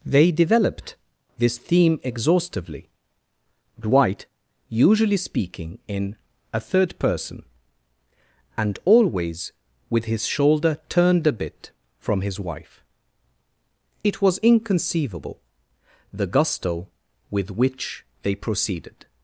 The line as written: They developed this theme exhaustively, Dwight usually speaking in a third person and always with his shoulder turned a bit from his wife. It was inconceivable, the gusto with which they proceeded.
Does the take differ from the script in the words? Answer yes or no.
no